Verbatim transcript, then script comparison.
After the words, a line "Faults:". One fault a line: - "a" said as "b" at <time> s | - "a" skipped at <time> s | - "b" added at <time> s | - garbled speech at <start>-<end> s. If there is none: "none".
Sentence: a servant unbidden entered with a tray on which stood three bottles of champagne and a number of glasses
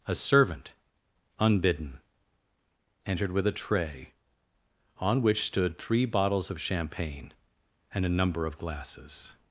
a servant unbidden entered with a tray on which stood three bottles of champagne and a number of glasses
Faults:
none